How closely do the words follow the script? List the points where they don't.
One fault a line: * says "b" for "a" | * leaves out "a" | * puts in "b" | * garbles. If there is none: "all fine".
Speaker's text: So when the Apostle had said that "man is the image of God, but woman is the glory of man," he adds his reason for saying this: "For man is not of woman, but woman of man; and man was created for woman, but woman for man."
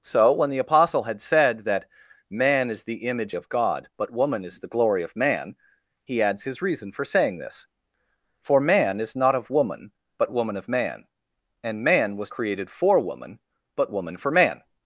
all fine